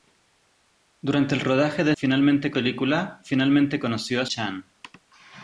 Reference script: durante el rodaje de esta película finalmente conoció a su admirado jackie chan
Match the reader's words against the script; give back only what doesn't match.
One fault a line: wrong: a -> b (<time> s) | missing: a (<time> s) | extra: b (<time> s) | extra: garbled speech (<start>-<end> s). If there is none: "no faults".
wrong: esta -> finalmente (2.0 s)
missing: su admirado jackie (4.3 s)